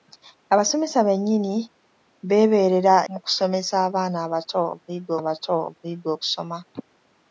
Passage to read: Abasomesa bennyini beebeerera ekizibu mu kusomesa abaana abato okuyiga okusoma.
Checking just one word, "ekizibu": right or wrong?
wrong